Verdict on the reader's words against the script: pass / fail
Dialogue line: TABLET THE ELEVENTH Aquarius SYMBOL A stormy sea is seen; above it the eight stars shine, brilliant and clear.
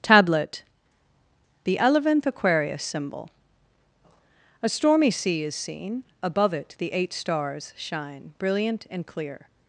pass